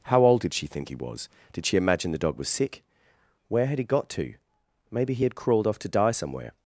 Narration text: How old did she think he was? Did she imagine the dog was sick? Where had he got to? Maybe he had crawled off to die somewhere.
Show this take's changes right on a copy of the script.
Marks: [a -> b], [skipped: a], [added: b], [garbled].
How old did she think he was? Did she imagine the dog was sick? Where had he got to? Maybe he had crawled off to die somewhere.